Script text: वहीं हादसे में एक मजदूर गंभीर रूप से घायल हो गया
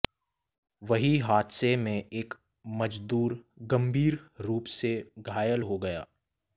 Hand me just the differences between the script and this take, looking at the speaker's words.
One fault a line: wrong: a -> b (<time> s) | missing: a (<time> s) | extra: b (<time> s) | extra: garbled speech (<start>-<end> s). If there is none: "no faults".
no faults